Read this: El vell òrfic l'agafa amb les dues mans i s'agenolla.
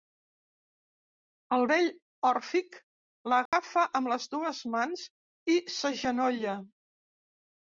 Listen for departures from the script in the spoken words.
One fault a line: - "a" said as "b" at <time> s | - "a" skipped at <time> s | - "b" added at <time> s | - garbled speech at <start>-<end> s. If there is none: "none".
none